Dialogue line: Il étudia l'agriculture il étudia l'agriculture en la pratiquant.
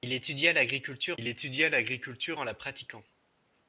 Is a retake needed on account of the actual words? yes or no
no